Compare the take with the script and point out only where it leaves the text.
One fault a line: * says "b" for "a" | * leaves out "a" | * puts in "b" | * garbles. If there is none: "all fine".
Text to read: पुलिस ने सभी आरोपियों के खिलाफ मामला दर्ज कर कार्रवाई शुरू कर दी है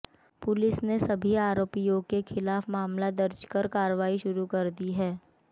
all fine